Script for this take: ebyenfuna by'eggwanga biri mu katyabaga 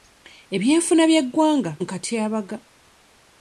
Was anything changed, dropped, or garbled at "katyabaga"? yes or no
no